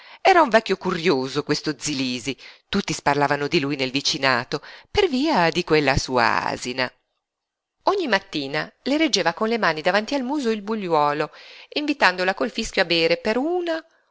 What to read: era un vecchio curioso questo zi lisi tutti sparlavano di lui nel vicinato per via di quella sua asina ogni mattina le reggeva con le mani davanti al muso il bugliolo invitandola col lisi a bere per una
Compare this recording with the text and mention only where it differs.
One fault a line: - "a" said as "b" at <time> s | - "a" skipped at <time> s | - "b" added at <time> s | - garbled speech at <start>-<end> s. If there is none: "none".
- "lisi" said as "fischio" at 12.5 s